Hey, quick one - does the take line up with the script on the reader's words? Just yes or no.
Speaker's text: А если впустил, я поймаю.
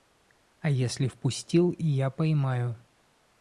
yes